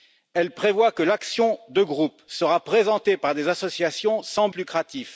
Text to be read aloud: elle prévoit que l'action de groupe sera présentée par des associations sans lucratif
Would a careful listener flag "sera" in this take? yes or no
no